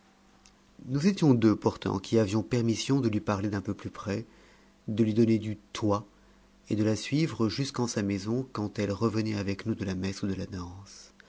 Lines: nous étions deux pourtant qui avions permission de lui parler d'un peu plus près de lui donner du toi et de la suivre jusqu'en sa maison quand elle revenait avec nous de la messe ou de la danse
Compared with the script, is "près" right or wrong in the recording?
right